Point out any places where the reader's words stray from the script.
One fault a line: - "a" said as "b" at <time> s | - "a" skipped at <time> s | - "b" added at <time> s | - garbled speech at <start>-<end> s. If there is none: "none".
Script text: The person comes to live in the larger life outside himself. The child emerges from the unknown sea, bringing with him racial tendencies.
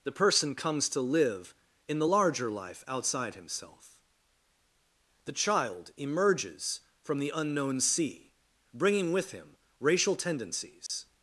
none